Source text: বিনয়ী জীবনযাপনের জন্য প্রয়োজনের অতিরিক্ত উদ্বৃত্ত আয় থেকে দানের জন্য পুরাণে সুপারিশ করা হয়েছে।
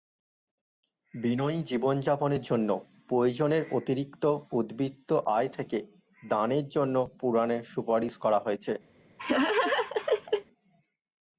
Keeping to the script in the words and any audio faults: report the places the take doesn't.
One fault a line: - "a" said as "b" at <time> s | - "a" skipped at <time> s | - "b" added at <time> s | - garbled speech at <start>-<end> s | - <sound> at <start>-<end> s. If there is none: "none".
- laugh at 9.2-10.5 s